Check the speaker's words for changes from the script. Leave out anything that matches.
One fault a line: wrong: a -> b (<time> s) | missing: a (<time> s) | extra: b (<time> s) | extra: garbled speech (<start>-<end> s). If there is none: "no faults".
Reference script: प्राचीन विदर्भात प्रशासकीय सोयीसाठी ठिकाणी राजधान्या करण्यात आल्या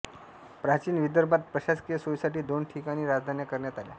extra: दोन (2.4 s)